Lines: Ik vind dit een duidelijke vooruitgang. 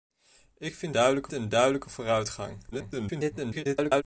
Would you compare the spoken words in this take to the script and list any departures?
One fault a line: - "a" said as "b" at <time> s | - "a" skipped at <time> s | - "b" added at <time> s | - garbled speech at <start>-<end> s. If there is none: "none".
- "dit" said as "duidelijke" at 0.9 s
- garbled speech at 2.7-4.0 s